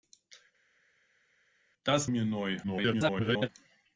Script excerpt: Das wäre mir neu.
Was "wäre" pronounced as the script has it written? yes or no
no